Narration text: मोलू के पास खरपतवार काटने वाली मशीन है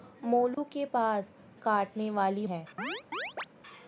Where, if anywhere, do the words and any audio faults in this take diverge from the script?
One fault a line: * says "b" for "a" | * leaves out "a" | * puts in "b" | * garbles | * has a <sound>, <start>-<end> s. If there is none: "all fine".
* has a dropout, 0.5-0.6 s
* leaves out "खरपतवार"
* leaves out "मशीन"
* has a chirp, 2.8-3.5 s